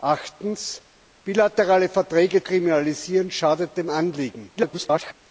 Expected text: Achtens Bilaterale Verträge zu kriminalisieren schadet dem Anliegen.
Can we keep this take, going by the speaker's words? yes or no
no